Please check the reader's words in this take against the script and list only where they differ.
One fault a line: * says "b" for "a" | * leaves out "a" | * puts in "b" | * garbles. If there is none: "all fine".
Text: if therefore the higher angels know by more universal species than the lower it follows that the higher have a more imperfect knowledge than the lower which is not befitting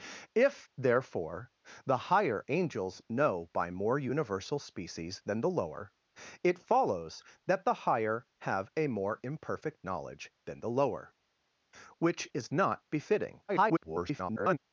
* garbles